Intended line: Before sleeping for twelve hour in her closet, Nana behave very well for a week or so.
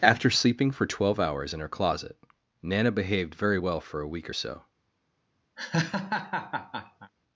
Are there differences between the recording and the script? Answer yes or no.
yes